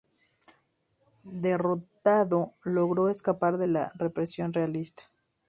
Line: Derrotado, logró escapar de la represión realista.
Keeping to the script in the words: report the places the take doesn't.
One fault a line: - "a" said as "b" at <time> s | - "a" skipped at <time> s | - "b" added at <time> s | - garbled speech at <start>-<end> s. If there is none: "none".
none